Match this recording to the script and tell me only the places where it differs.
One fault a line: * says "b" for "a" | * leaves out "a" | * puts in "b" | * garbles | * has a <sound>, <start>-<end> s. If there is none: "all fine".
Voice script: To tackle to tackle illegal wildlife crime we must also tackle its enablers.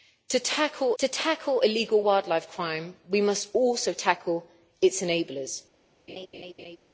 * has a laugh, 6.1-6.8 s